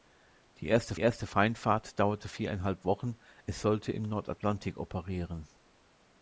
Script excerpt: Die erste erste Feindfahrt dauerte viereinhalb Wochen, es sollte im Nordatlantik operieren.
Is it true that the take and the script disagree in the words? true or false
false